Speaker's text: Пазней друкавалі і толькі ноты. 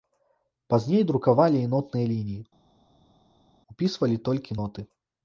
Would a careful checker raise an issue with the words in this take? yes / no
yes